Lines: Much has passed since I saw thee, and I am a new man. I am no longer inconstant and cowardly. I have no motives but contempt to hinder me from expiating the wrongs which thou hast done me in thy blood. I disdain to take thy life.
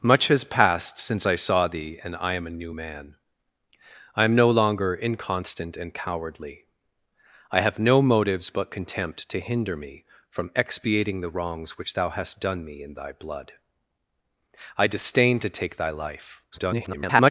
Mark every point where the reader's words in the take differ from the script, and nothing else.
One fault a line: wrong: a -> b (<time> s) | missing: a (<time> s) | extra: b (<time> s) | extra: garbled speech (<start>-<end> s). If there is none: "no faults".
extra: garbled speech (16.5-17.3 s)